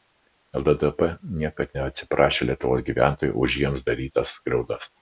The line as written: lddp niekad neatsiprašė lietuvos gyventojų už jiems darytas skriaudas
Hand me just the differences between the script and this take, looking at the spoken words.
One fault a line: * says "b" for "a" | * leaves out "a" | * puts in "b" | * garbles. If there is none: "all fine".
all fine